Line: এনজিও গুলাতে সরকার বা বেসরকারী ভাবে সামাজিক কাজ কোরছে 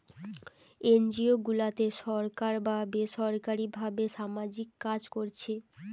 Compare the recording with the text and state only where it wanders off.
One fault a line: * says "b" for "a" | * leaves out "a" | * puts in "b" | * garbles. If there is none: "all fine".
all fine